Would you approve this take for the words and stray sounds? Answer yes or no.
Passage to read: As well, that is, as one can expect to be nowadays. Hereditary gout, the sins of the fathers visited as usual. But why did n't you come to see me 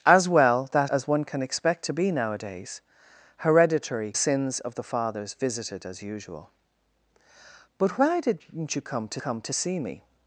no